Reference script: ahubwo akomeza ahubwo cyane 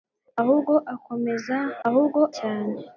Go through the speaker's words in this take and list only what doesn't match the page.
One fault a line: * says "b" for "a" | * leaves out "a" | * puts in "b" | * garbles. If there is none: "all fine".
all fine